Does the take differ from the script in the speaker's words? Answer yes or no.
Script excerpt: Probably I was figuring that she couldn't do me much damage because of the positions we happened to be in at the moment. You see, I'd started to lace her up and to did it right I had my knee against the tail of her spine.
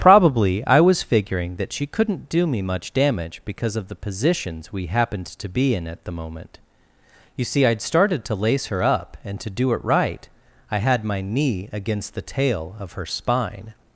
yes